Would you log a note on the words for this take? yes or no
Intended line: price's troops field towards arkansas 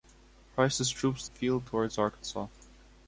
no